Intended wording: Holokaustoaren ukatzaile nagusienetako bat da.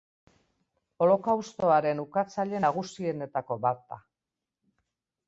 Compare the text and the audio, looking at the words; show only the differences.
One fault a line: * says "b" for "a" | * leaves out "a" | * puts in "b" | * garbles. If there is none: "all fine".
all fine